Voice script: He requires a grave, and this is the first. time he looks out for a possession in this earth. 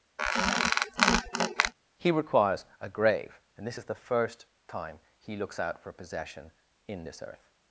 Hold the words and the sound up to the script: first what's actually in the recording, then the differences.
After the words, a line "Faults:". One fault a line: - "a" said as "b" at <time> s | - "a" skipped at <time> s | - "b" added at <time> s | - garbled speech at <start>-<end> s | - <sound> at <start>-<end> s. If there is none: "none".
He requires a grave, and this is the first. time he looks out for possession in this earth.
Faults:
- squeak at 0.2-1.7 s
- "a" skipped at 5.9 s